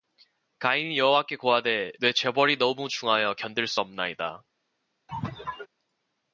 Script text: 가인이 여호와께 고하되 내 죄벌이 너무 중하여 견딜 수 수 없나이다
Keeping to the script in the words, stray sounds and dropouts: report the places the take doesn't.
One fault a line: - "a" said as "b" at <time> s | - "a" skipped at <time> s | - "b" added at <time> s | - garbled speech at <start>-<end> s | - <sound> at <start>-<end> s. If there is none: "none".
- "수" skipped at 3.8 s
- sneeze at 5.1-5.7 s